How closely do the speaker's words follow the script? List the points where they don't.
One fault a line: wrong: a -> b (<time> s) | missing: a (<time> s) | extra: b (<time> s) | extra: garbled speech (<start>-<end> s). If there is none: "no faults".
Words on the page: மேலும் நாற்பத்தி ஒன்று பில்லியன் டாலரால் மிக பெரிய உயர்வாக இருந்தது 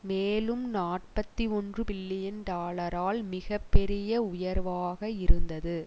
no faults